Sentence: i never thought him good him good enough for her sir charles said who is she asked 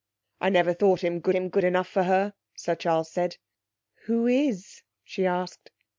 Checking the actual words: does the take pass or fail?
pass